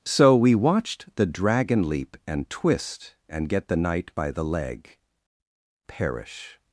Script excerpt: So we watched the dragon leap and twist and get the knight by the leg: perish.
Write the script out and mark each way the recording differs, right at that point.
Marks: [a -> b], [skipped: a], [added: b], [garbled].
So we watched the dragon leap and twist and get the knight by the leg: perish.